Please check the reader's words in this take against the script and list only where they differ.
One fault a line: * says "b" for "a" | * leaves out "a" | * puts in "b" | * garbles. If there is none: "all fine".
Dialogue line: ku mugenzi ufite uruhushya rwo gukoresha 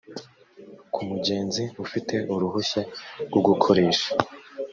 all fine